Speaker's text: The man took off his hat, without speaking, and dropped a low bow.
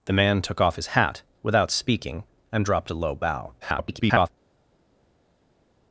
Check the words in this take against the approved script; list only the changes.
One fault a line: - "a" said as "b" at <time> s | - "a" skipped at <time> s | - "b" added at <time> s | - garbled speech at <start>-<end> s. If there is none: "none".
- garbled speech at 3.6-4.3 s